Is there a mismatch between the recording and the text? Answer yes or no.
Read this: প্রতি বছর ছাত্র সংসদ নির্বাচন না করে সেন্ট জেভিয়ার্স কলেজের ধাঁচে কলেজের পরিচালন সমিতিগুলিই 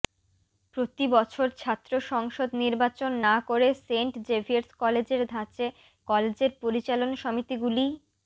no